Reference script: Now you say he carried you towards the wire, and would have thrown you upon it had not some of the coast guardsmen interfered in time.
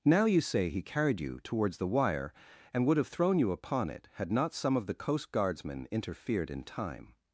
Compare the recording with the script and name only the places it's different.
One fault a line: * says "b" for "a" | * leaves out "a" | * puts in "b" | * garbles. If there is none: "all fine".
all fine